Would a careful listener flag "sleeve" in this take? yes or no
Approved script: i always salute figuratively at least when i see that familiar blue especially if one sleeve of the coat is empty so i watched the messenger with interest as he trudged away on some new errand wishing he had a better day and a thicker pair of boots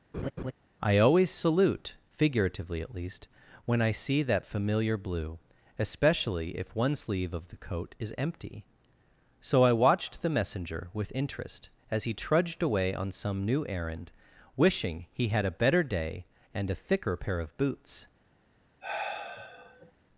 no